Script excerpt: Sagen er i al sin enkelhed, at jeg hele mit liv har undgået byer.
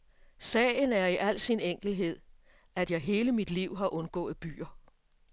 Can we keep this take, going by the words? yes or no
yes